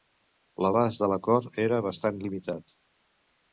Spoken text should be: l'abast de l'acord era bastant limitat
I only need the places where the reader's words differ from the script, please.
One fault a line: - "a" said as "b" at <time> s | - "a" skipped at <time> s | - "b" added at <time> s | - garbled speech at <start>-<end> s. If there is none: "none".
none